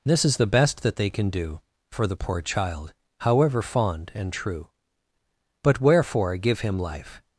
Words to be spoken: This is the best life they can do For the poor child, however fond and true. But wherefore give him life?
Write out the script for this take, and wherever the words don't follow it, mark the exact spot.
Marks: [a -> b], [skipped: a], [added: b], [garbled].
This is the best [life -> that] they can do For the poor child, however fond and true. But wherefore give him life?